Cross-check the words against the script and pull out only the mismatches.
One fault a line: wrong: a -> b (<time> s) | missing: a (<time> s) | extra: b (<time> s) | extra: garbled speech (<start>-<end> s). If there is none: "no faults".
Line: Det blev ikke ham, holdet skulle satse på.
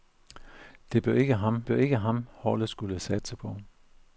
extra: blev ikke ham (1.7 s)